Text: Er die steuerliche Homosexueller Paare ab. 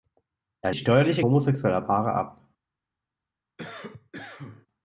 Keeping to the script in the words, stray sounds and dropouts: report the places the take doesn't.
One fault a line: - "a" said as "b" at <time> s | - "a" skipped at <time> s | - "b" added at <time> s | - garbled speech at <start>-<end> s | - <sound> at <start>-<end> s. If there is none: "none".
- cough at 3.6-4.7 s